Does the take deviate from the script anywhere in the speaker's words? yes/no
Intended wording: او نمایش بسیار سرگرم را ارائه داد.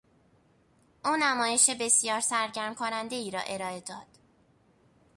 yes